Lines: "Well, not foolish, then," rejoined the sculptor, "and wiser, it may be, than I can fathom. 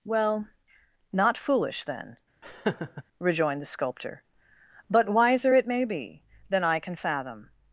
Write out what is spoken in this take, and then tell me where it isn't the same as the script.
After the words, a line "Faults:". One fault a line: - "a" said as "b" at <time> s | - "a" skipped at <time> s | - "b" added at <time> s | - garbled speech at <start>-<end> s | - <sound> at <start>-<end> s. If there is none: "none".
"Well, not foolish, then," rejoined the sculptor, "but wiser, it may be, than I can fathom.
Faults:
- laugh at 2.4-3.0 s
- "and" said as "but" at 4.9 s